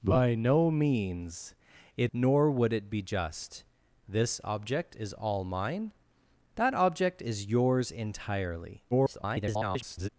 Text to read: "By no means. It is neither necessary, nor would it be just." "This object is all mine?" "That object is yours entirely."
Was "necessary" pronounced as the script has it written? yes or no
no